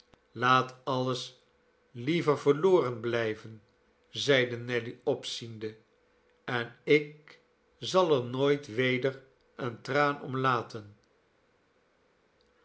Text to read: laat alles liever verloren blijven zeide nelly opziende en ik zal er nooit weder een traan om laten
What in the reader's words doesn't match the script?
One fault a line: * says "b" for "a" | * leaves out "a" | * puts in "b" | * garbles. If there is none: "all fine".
all fine